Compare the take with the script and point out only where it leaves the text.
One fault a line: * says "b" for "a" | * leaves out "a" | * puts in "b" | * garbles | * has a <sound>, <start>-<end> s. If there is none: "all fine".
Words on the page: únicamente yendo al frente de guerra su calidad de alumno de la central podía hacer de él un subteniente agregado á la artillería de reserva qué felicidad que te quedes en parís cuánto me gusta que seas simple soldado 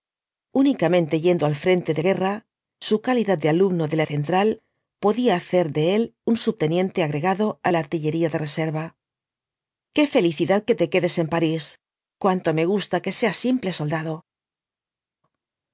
all fine